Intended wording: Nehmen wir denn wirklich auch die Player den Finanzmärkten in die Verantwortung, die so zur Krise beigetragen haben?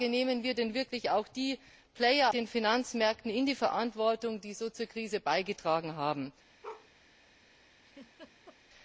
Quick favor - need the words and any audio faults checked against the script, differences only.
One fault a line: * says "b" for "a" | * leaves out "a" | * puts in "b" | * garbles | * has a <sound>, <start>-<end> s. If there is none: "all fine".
* has a bark, 6.6-6.9 s
* has a laugh, 7.8-8.6 s